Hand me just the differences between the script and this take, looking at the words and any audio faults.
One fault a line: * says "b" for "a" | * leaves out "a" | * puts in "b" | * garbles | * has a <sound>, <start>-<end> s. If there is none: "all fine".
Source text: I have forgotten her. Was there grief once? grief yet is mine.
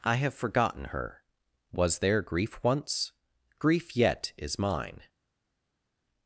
all fine